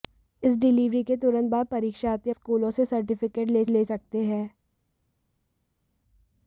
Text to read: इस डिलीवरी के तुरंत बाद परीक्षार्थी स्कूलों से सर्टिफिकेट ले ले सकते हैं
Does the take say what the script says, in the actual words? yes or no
yes